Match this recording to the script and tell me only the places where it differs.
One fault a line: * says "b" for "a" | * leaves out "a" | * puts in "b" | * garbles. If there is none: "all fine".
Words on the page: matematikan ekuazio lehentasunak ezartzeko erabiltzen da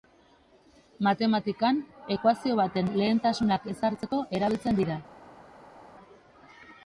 * puts in "baten"
* says "dira" for "da"